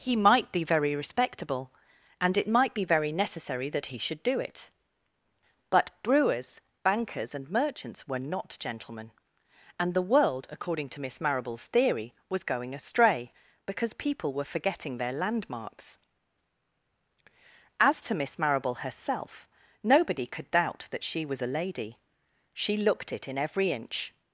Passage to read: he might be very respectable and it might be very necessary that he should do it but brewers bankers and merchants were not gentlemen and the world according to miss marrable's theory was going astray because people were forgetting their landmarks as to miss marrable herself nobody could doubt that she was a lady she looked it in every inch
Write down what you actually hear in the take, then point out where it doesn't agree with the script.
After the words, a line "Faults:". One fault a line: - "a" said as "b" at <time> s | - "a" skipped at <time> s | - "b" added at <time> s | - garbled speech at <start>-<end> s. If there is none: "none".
he might be very respectable and it might be very necessary that he should do it but brewers bankers and merchants were not gentlemen and the world according to miss marrable's theory was going astray because people were forgetting their landmarks as to miss marrable herself nobody could doubt that she was a lady she looked it in every inch
Faults:
none